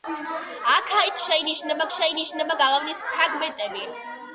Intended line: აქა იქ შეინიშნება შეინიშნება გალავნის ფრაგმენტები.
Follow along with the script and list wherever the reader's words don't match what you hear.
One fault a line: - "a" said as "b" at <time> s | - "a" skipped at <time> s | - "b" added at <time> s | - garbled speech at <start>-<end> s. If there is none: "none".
none